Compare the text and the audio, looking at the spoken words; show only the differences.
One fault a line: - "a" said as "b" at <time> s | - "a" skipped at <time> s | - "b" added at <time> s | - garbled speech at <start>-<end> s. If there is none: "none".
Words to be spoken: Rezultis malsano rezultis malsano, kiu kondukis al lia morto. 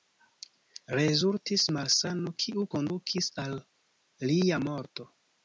- "rezultis malsano" skipped at 2.3 s